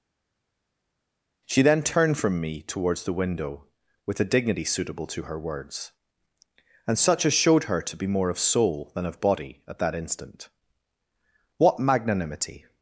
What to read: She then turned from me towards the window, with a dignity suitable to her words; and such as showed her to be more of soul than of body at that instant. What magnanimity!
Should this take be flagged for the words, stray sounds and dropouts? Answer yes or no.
no